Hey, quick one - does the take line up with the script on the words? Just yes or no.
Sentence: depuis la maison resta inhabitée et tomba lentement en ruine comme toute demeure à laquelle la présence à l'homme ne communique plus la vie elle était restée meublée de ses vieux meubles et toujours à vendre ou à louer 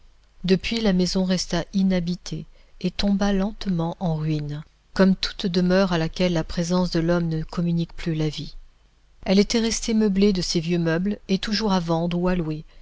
no